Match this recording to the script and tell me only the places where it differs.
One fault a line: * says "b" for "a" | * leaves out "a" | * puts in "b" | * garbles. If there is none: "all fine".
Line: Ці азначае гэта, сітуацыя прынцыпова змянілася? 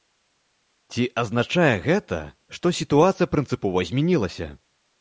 * puts in "што"